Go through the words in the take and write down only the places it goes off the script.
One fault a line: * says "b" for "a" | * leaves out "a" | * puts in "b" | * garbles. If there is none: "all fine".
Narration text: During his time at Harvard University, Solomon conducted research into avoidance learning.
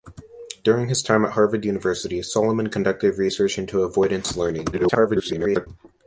* garbles